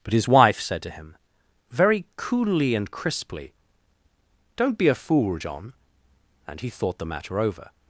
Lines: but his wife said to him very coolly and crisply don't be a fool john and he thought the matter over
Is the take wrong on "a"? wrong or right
right